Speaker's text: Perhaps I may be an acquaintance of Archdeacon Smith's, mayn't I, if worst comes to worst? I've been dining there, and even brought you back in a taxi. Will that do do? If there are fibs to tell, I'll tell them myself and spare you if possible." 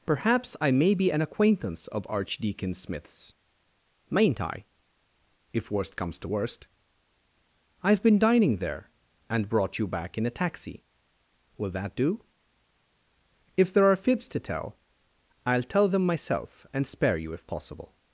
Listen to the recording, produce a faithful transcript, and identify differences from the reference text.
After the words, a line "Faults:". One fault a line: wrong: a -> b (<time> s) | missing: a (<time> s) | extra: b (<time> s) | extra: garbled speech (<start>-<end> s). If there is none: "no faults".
Perhaps I may be an acquaintance of Archdeacon Smith's, mayn't I, if worst comes to worst? I've been dining there, and brought you back in a taxi. Will that do? If there are fibs to tell, I'll tell them myself and spare you if possible."
Faults:
missing: even (9.5 s)
missing: do (12.2 s)